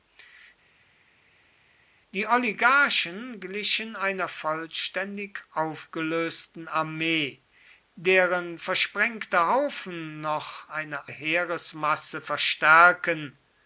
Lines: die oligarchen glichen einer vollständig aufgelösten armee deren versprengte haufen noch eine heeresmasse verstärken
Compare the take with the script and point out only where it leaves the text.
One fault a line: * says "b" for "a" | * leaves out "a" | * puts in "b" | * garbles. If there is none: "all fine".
all fine